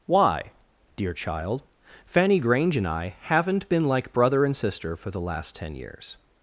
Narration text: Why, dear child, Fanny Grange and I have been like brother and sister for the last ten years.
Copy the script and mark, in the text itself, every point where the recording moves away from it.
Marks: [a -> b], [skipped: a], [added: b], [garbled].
Why, dear child, Fanny Grange and I [have -> haven't] been like brother and sister for the last ten years.